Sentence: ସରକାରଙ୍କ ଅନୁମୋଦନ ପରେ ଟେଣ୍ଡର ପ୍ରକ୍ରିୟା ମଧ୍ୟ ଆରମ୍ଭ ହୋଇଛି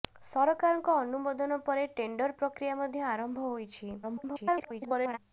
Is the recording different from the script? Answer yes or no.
yes